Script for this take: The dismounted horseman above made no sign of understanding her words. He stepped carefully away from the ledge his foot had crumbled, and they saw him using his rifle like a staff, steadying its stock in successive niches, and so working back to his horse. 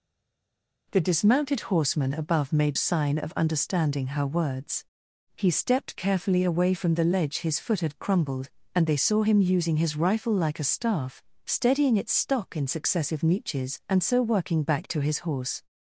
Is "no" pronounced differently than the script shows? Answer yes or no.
yes